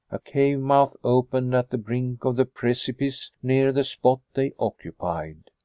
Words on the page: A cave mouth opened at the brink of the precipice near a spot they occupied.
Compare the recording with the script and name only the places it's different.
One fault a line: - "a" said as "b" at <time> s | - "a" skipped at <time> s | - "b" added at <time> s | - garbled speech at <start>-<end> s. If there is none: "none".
- "a" said as "the" at 3.7 s